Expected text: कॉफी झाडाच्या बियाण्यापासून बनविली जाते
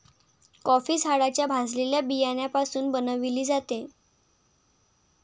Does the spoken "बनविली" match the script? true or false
true